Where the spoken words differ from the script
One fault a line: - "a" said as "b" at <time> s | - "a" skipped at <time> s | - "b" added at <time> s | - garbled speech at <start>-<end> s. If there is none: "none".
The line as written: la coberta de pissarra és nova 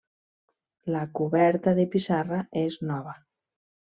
none